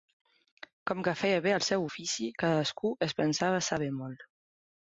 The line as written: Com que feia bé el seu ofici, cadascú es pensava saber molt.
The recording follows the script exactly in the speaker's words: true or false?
true